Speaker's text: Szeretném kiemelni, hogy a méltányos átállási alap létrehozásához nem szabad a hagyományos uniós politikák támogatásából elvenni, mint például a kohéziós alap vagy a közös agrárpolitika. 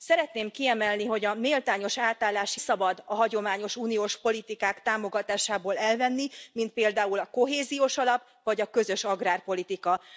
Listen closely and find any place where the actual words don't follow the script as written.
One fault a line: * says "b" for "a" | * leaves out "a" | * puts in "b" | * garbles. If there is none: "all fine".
* leaves out "alap létrehozásához nem"